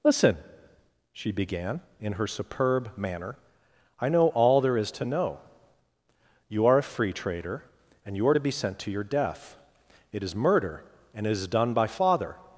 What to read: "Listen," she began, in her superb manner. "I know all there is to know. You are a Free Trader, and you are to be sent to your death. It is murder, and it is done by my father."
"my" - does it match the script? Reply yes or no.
no